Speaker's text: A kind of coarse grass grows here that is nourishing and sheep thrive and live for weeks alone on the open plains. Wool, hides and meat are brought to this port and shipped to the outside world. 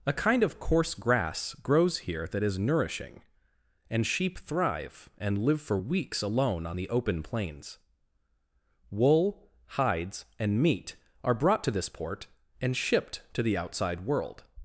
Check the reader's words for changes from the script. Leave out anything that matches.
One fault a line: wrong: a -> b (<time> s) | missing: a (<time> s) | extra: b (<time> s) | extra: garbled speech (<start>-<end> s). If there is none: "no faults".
no faults